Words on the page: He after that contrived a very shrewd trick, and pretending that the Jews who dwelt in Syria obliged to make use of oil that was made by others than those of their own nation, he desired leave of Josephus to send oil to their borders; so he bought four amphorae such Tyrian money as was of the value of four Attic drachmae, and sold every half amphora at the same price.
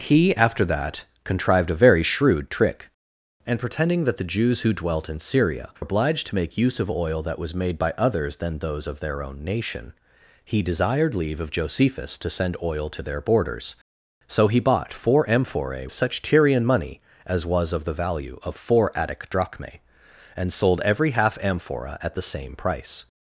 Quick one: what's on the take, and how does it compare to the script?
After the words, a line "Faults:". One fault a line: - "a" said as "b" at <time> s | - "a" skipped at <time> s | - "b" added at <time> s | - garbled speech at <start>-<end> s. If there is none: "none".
He after that contrived a very shrewd trick, and pretending that the Jews who dwelt in Syria obliged to make use of oil that was made by others than those of their own nation, he desired leave of Josephus to send oil to their borders; so he bought four amphorae such Tyrian money as was of the value of four Attic drachmae, and sold every half amphora at the same price.
Faults:
none